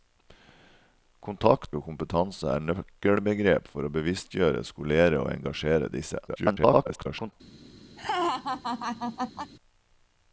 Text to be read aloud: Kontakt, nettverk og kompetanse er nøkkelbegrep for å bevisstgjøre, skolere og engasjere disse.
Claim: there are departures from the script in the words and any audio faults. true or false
true